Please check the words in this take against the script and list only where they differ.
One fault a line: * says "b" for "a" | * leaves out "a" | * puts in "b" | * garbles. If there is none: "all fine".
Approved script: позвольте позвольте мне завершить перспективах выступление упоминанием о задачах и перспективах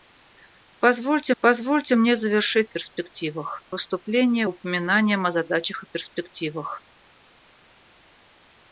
all fine